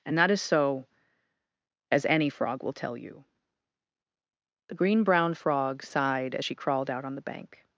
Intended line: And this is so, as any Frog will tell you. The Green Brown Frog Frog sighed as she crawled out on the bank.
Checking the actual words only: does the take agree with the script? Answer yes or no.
no